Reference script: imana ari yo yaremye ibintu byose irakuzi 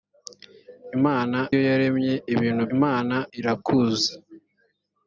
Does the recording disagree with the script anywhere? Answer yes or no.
yes